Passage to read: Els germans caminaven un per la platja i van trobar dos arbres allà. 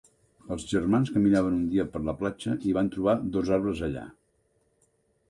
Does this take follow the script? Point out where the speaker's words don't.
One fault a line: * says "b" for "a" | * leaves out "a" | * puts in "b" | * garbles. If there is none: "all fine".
* puts in "dia"